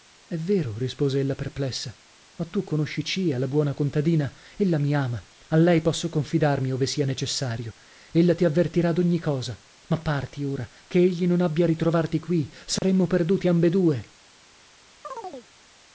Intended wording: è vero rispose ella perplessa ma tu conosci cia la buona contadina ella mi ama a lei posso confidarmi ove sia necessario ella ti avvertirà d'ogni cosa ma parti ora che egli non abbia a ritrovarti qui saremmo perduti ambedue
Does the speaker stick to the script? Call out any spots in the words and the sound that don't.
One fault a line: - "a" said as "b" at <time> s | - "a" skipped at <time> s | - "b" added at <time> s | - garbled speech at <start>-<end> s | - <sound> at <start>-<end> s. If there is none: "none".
- dropout at 12.8-12.8 s
- chirp at 15.0-15.5 s